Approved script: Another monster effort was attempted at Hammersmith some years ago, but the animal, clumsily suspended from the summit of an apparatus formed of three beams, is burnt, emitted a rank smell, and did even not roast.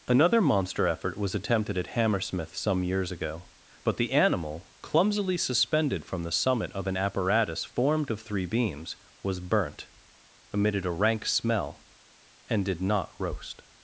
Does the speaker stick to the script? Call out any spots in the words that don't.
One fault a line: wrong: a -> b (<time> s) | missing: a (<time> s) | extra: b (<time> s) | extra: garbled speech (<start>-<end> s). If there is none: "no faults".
wrong: is -> was (9.2 s)
missing: even (12.8 s)